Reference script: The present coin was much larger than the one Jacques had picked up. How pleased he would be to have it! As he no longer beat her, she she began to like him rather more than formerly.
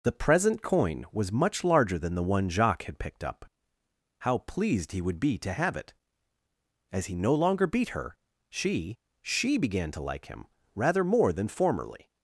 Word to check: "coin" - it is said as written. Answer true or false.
true